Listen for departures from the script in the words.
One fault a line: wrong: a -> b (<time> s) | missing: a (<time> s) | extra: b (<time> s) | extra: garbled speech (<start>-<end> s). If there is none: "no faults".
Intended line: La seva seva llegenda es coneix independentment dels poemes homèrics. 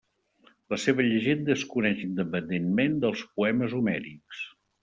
missing: seva (1.1 s)